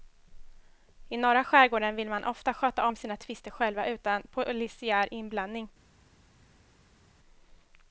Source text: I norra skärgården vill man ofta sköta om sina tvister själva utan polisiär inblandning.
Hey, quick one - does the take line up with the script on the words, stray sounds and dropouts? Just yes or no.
yes